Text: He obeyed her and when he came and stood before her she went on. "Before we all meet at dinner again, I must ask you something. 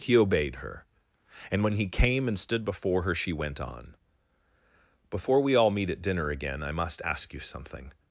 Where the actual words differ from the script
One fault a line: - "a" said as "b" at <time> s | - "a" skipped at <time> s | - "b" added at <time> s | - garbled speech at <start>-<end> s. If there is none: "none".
none